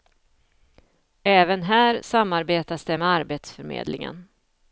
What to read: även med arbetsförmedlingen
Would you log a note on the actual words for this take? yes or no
yes